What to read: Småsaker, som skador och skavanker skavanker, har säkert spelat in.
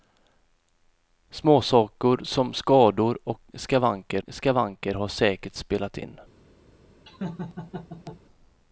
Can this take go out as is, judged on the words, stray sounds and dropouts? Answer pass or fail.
fail